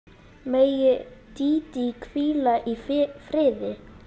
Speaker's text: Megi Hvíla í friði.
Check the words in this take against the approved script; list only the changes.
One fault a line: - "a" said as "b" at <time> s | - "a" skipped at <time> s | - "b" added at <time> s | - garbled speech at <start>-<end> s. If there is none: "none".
- "Dídí" added at 1.4 s